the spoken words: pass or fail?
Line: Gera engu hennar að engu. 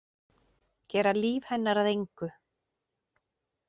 fail